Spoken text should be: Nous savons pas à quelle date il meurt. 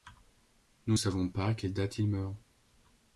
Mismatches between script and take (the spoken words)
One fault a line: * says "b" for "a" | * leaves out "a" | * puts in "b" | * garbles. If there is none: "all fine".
all fine